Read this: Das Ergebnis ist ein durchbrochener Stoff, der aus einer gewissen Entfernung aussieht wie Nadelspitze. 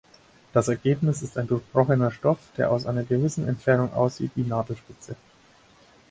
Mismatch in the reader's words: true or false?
false